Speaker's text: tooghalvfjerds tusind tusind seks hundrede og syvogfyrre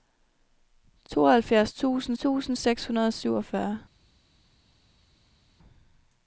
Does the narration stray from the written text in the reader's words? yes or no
no